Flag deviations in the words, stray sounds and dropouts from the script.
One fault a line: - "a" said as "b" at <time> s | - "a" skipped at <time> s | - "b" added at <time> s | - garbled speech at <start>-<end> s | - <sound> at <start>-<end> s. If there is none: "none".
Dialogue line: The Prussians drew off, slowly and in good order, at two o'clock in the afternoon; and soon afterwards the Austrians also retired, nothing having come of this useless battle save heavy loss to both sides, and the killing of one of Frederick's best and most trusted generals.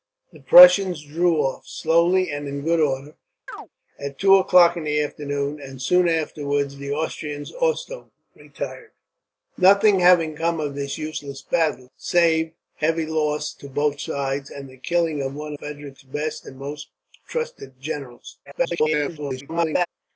- chirp at 3.5-3.7 s
- "of" skipped at 15.5 s
- garbled speech at 18.5-19.9 s